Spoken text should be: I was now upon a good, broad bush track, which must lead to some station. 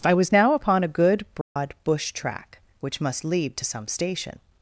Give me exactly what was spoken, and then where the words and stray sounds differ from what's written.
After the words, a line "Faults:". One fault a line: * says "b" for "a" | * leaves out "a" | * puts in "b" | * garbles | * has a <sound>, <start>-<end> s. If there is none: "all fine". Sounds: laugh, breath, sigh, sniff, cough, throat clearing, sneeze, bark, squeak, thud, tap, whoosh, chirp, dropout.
I was now upon a good, broad bush track, which must lead to some station.
Faults:
* has a dropout, 1.4-1.6 s